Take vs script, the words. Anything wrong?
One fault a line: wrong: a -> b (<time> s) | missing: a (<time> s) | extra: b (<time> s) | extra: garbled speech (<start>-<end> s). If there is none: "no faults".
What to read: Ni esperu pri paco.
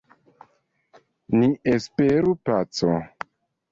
missing: pri (2.4 s)